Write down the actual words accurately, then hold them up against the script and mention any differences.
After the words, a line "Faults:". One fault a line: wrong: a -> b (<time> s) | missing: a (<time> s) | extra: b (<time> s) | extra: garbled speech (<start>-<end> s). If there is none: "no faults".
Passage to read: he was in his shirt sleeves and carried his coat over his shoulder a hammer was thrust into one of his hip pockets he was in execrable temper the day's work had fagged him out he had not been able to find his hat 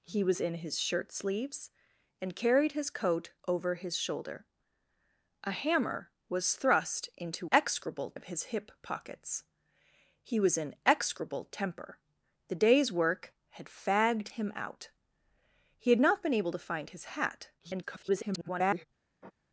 he was in his shirt sleeves and carried his coat over his shoulder a hammer was thrust into execrable of his hip pockets he was in execrable temper the day's work had fagged him out he had not been able to find his hat [garbled]
Faults:
wrong: one -> execrable (7.5 s)
extra: garbled speech (17.6-18.9 s)